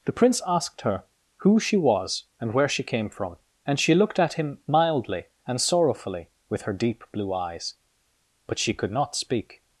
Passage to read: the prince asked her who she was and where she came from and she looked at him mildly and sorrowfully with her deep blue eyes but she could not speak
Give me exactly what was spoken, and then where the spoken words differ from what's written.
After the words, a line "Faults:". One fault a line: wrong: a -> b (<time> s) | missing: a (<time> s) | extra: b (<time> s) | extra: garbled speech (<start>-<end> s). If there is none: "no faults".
the prince asked her who she was and where she came from and she looked at him mildly and sorrowfully with her deep blue eyes but she could not speak
Faults:
no faults